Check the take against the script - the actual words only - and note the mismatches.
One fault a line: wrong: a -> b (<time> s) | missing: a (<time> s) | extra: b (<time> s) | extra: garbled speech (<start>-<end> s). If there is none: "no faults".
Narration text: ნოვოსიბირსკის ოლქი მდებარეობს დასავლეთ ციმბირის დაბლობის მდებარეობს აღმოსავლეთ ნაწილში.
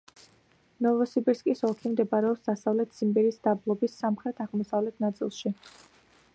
wrong: მდებარეობს -> სამხრეთ (4.1 s)